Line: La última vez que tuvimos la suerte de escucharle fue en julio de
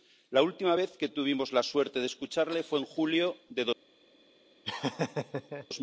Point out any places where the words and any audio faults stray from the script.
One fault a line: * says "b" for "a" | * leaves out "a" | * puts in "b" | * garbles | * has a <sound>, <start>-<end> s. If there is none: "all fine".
* has a laugh, 4.6-5.7 s